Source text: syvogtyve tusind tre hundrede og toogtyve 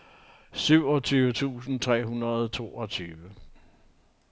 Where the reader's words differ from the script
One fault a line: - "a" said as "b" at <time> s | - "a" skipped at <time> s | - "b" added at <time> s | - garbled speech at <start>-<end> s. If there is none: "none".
none